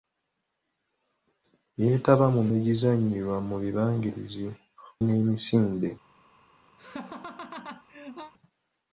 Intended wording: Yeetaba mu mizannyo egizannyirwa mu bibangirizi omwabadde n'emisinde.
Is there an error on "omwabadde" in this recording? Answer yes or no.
yes